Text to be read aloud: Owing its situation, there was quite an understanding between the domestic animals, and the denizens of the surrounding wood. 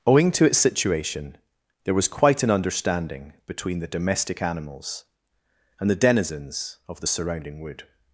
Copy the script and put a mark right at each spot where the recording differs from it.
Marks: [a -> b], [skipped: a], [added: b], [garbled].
Owing [added: to] its situation, there was quite an understanding between the domestic animals, and the denizens of the surrounding wood.